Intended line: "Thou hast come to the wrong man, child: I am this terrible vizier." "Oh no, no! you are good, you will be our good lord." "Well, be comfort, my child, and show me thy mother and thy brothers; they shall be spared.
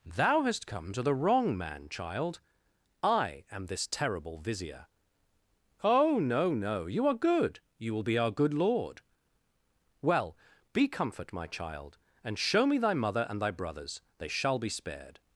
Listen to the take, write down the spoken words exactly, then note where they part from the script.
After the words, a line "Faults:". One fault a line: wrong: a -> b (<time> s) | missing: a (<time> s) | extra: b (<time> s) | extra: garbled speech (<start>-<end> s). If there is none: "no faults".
"Thou hast come to the wrong man, child: I am this terrible vizier." "Oh no, no! you are good, you will be our good lord." "Well, be comfort, my child, and show me thy mother and thy brothers; they shall be spared.
Faults:
no faults